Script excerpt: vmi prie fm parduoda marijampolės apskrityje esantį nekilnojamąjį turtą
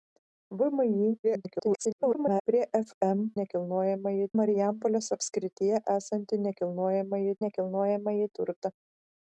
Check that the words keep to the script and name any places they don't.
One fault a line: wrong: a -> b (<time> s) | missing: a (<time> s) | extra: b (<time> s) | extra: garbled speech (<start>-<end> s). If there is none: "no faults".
extra: garbled speech (1.2-2.4 s)
wrong: parduoda -> nekilnojamąjį (3.4 s)
extra: nekilnojamąjį (7.4 s)